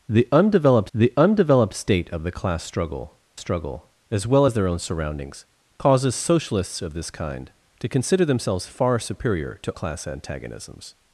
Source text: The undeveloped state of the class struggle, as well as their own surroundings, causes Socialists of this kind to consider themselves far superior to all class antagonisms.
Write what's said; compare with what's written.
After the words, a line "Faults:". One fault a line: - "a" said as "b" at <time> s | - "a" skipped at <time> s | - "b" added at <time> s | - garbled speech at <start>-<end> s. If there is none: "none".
The undeveloped the undeveloped state of the class struggle struggle, as well as their own surroundings, causes Socialists of this kind to consider themselves far superior to class antagonisms.
Faults:
- "the undeveloped" added at 0.9 s
- "struggle" added at 3.4 s
- "all" skipped at 9.7 s